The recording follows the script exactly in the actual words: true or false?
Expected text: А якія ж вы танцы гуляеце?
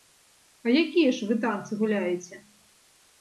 true